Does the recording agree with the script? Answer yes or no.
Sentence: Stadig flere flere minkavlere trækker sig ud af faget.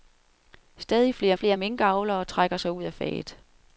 yes